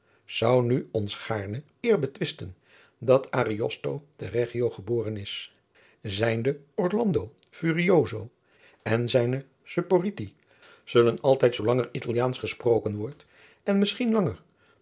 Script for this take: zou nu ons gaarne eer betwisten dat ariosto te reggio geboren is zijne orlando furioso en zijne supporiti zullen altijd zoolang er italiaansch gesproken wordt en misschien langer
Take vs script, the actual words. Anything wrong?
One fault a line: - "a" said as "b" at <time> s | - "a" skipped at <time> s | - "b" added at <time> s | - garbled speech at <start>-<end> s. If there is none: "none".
none